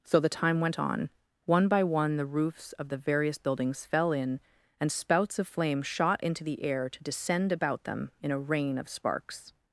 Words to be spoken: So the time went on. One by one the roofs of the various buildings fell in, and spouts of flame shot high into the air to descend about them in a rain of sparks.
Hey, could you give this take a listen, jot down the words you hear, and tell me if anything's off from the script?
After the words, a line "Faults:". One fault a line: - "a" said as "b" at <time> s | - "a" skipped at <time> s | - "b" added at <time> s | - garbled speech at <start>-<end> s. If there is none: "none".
So the time went on. One by one the roofs of the various buildings fell in, and spouts of flame shot into the air to descend about them in a rain of sparks.
Faults:
- "high" skipped at 6.2 s